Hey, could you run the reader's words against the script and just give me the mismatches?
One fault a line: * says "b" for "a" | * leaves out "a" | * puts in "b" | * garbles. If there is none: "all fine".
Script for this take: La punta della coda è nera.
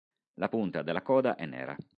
all fine